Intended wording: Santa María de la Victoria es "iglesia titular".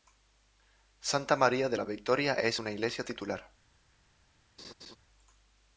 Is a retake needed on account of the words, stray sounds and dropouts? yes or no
yes